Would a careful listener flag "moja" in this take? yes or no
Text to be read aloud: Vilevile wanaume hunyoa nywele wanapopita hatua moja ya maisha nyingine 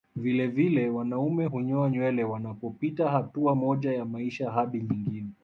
no